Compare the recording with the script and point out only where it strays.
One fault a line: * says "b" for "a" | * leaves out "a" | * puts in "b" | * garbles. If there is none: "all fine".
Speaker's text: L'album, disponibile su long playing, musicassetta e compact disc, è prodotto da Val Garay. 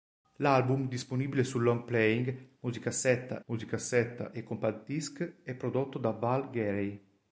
* puts in "musicassetta"